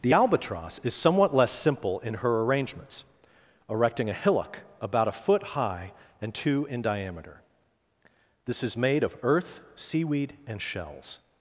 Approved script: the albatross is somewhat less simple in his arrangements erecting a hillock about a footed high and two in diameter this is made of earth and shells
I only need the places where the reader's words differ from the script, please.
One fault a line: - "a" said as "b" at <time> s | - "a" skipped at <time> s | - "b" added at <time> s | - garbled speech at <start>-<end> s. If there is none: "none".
- "his" said as "her" at 2.1 s
- "footed" said as "foot" at 5.1 s
- "seaweed" added at 9.7 s